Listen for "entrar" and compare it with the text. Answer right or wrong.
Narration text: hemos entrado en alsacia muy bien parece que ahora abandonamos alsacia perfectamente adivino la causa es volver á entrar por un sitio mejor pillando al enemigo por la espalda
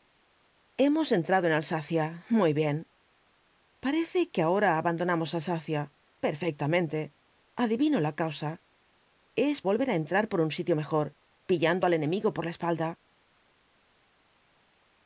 right